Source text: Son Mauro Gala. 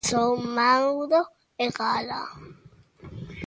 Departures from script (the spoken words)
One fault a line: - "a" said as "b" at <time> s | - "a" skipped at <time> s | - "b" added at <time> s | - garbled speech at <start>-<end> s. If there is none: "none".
- "e" added at 1.6 s